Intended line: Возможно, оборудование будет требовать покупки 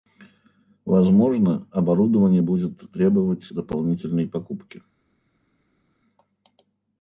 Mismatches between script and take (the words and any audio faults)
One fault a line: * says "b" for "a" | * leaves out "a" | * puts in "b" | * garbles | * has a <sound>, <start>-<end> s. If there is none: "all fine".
* puts in "дополнительной"